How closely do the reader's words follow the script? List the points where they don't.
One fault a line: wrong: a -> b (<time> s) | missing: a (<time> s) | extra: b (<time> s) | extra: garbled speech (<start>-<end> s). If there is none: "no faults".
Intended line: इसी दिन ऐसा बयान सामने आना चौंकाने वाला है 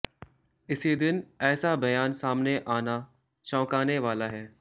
no faults